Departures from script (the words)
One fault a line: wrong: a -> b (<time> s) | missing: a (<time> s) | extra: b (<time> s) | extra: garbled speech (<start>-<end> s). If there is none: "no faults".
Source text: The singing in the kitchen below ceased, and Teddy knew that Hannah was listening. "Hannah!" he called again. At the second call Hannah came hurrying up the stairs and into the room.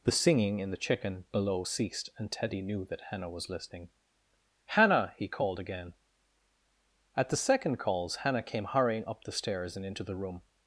wrong: kitchen -> chicken (0.8 s)
wrong: call -> calls (7.8 s)